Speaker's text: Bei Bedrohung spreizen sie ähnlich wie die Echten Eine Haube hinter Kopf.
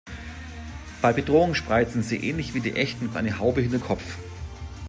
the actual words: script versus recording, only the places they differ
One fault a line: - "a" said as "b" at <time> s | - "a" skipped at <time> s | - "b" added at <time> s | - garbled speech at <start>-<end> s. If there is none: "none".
none